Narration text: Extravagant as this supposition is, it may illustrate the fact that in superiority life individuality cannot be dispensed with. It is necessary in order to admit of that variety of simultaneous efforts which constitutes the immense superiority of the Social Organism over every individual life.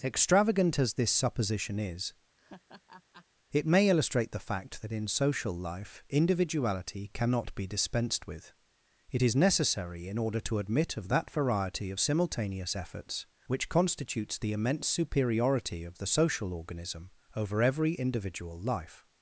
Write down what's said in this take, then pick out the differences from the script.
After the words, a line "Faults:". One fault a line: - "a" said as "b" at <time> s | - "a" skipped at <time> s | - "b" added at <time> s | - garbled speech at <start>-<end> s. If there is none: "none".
Extravagant as this supposition is, it may illustrate the fact that in social life individuality cannot be dispensed with. It is necessary in order to admit of that variety of simultaneous efforts which constitutes the immense superiority of the Social Organism over every individual life.
Faults:
- "superiority" said as "social" at 5.1 s